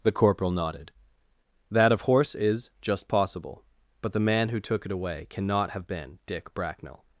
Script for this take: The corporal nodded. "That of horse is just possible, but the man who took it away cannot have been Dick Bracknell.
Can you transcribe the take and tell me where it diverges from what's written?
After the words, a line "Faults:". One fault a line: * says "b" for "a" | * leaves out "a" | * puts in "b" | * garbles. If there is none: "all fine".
The corporal nodded. "That of horse is just possible, but the man who took it away cannot have been Dick Bracknell.
Faults:
all fine